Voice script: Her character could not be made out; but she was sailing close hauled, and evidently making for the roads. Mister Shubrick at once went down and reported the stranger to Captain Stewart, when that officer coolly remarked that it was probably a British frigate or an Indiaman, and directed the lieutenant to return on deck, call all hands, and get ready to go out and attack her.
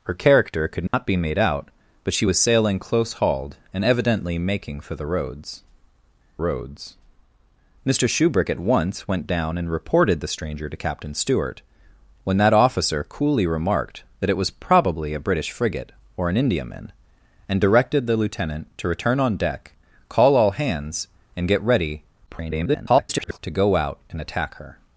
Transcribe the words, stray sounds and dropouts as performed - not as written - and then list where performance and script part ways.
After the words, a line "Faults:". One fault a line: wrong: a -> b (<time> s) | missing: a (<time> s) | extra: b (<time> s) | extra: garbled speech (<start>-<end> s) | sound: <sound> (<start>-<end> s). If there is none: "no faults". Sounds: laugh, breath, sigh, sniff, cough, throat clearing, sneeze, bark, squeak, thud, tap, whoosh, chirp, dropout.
Her character could not be made out; but she was sailing close hauled, and evidently making for the roads roads. Mister Shubrick at once went down and reported the stranger to Captain Stewart, when that officer coolly remarked that it was probably a British frigate or an Indiaman, and directed the lieutenant to return on deck, call all hands, and get ready [garbled] to go out and attack her.
Faults:
sound: dropout (0.9-0.9 s)
extra: roads (6.4 s)
extra: garbled speech (22.3-23.4 s)